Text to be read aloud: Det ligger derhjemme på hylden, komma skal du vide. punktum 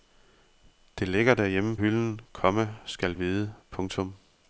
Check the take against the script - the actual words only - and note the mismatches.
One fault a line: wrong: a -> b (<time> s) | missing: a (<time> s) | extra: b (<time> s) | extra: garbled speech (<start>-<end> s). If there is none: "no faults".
missing: på (1.8 s)
missing: du (3.1 s)